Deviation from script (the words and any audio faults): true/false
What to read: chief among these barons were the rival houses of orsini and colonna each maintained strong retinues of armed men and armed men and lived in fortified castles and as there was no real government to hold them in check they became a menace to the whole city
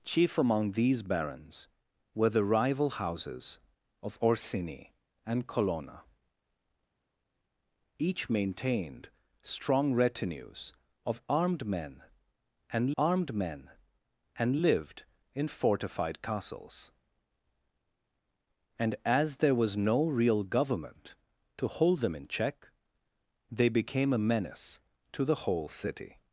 false